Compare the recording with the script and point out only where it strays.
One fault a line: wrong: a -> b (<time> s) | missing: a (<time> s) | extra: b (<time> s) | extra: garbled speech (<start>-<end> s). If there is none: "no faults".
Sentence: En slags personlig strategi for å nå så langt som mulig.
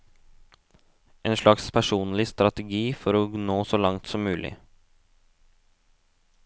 no faults